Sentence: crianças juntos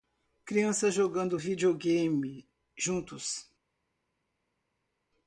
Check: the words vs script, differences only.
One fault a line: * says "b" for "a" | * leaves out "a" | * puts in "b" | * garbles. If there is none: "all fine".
* puts in "jogando videogame"